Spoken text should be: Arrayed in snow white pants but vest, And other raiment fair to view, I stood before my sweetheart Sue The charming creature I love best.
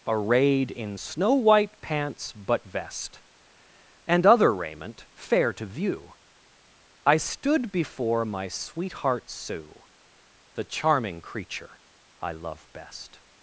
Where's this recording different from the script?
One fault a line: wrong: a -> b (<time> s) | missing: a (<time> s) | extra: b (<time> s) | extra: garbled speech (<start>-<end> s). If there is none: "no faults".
no faults